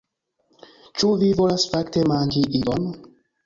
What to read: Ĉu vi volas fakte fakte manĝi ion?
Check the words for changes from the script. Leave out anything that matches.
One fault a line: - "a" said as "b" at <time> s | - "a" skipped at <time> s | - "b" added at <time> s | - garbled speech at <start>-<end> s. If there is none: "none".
- "fakte" skipped at 2.0 s